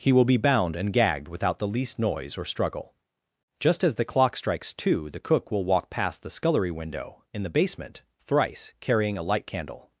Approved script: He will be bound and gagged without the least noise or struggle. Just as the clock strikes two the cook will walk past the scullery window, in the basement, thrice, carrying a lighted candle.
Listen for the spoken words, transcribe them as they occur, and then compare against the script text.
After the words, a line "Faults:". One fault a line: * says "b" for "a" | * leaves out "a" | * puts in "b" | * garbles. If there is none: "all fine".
He will be bound and gagged without the least noise or struggle. Just as the clock strikes two the cook will walk past the scullery window, in the basement, thrice, carrying a light candle.
Faults:
* says "light" for "lighted"